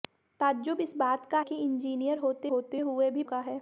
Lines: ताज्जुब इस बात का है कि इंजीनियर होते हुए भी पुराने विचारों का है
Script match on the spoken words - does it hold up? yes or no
no